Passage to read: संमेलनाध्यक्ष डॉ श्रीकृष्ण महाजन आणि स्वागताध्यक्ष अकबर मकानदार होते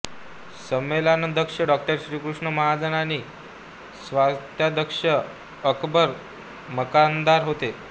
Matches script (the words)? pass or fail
pass